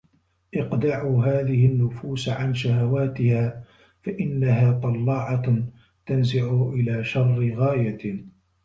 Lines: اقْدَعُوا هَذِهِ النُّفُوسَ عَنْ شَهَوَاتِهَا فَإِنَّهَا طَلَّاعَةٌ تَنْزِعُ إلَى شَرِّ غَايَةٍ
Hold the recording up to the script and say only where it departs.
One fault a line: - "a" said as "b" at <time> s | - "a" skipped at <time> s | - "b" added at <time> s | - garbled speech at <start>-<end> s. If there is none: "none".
none